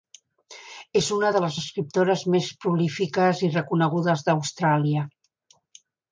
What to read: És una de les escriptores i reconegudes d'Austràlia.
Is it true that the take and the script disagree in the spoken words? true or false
true